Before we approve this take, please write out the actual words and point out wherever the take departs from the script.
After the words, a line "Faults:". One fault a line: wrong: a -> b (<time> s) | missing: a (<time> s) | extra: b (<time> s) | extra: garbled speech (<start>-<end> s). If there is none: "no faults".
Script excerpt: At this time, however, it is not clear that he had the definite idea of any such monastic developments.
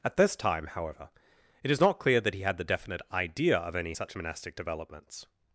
At this time, however, it is not clear that he had the definite idea of any such monastic developments.
Faults:
no faults